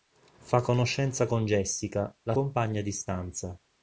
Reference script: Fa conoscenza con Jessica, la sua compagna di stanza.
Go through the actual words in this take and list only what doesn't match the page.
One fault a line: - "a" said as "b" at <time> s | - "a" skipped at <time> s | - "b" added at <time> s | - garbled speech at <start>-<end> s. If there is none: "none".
- "sua" skipped at 2.3 s